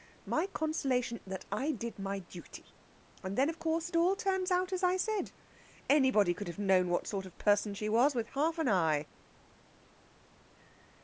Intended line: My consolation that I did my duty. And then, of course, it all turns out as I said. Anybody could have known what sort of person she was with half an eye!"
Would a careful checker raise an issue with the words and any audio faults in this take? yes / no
no